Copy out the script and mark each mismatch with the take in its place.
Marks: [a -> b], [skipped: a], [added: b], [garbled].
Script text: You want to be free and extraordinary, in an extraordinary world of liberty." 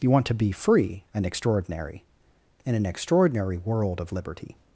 You want to be free and extraordinary, in an extraordinary world of liberty."